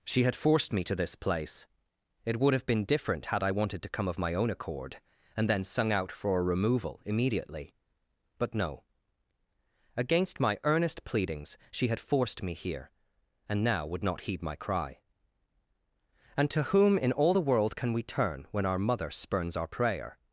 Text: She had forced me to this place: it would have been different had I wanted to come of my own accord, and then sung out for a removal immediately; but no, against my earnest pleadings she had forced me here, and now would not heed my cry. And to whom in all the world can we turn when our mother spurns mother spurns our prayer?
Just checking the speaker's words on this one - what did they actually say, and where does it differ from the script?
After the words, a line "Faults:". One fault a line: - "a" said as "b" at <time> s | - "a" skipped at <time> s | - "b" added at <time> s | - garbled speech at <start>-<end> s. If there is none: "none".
She had forced me to this place: it would have been different had I wanted to come of my own accord, and then sung out for a removal immediately; but no, against my earnest pleadings she had forced me here, and now would not heed my cry. And to whom in all the world can we turn when our mother spurns our prayer?
Faults:
- "mother spurns" skipped at 19.6 s